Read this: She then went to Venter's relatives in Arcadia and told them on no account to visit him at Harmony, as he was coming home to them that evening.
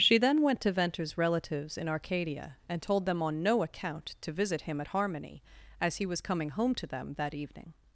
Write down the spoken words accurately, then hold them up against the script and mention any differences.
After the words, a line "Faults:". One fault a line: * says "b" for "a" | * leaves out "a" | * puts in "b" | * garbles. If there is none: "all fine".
She then went to Venter's relatives in Arcadia and told them on no account to visit him at Harmony, as he was coming home to them that evening.
Faults:
all fine